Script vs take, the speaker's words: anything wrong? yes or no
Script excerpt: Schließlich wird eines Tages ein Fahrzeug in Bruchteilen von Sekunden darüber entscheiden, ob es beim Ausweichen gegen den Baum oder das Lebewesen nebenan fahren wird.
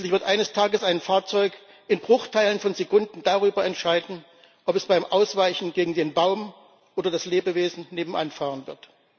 no